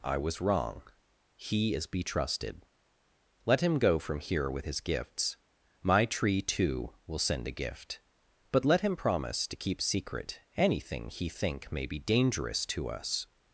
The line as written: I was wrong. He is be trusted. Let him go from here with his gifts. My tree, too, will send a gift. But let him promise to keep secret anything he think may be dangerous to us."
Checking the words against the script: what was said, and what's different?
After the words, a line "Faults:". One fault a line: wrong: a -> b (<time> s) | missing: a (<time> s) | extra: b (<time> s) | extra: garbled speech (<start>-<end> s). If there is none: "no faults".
I was wrong. He is be trusted. Let him go from here with his gifts. My tree, too, will send a gift. But let him promise to keep secret anything he think may be dangerous to us."
Faults:
no faults